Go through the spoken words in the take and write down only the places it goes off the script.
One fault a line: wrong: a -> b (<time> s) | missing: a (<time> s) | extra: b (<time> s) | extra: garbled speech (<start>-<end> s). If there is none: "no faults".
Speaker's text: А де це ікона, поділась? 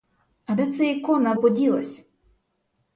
no faults